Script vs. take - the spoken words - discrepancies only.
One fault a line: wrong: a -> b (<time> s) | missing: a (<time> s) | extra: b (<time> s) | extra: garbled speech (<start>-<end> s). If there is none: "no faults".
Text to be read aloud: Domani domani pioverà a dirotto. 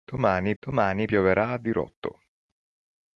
no faults